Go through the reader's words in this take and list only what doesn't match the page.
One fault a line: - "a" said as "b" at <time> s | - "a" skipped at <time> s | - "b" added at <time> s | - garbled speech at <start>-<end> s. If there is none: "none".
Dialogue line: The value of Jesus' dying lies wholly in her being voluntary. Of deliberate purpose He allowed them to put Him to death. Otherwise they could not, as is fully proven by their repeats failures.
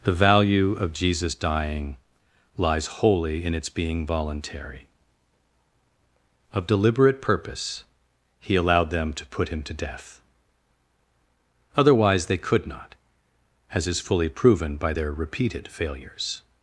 - "her" said as "its" at 3.5 s
- "repeats" said as "repeated" at 15.1 s